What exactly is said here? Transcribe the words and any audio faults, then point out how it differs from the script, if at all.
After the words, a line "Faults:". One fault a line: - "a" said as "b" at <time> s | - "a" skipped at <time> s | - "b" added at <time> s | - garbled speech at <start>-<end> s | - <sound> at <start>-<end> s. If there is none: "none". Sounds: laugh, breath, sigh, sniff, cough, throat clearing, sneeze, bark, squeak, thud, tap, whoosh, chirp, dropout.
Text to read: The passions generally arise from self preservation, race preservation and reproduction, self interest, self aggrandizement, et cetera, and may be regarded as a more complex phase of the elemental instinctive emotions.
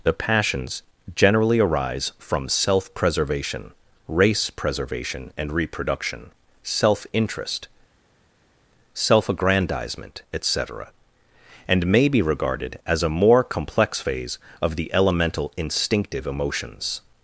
The passions generally arise from self preservation, race preservation and reproduction, self interest, self aggrandizement, et cetera, and may be regarded as a more complex phase of the elemental instinctive emotions.
Faults:
none